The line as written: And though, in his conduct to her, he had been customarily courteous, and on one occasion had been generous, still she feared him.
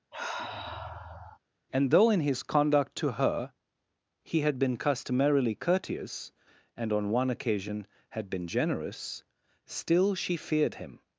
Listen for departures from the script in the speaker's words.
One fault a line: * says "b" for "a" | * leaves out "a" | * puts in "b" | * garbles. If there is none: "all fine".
all fine